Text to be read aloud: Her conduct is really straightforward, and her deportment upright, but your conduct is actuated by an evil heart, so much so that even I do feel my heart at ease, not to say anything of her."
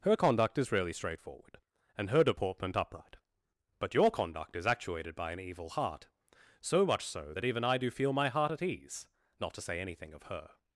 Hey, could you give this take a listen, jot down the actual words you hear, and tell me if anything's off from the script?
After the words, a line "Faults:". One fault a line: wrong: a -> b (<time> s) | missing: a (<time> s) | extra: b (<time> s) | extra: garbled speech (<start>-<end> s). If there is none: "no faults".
Her conduct is really straightforward, and her deportment upright, but your conduct is actuated by an evil heart, so much so that even I do feel my heart at ease, not to say anything of her."
Faults:
no faults